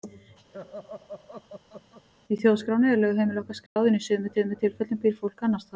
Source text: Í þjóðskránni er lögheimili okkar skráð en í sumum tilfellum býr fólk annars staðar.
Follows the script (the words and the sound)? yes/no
no